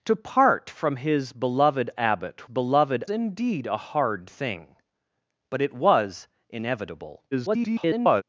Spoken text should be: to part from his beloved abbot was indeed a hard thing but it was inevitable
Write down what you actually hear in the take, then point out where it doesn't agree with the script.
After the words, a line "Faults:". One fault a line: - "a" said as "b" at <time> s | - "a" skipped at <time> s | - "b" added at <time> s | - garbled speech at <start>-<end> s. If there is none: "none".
to part from his beloved abbot beloved indeed a hard thing but it was inevitable [garbled]
Faults:
- "was" said as "beloved" at 2.4 s
- garbled speech at 7.3-8.2 s